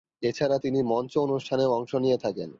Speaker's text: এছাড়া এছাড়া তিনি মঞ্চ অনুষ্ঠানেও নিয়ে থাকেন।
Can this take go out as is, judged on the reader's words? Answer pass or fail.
fail